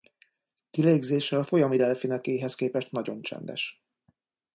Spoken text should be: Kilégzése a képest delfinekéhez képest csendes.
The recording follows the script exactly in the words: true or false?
false